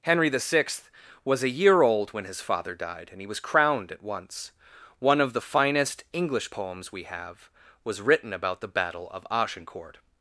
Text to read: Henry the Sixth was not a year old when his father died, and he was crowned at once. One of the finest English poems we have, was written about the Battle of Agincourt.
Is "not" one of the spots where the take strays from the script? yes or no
yes